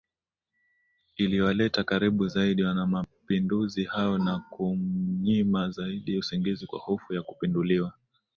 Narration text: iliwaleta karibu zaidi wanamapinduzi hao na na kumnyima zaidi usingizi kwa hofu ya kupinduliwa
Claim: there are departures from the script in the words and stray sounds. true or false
true